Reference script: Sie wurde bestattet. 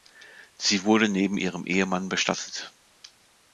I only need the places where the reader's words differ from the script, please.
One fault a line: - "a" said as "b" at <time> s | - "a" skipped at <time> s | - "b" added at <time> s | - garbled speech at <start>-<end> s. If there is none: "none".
- "neben ihrem Ehemann" added at 1.1 s